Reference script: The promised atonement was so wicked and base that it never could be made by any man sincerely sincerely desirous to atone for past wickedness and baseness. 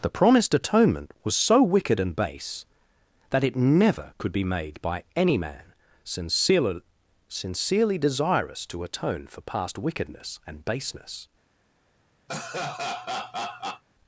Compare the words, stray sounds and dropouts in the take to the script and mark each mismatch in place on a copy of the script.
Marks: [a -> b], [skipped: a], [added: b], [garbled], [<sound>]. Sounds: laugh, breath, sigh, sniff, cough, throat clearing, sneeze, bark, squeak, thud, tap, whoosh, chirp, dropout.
The promised atonement was so wicked and base that it never could be made by any man sincerely sincerely desirous to atone for past wickedness and baseness. [laugh]